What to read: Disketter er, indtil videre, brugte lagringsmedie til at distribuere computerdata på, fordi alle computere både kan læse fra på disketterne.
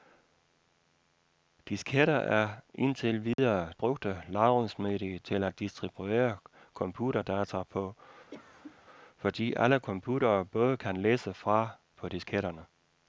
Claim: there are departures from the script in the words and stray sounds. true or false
true